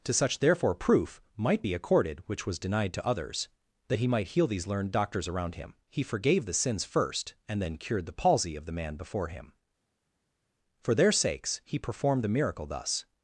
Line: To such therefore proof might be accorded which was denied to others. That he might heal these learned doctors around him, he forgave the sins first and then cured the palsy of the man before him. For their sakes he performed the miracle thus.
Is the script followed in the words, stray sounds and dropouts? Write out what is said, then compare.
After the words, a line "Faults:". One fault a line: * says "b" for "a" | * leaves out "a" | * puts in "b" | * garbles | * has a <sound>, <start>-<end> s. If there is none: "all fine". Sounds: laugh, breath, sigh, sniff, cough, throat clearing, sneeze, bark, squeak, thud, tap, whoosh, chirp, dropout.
To such therefore proof might be accorded which was denied to others. That he might heal these learned doctors around him, he forgave the sins first and then cured the palsy of the man before him. For their sakes he performed the miracle thus.
Faults:
all fine